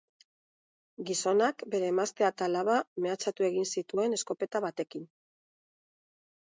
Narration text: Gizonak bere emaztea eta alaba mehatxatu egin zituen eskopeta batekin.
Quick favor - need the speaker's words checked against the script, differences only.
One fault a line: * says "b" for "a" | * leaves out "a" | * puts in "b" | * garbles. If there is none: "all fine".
all fine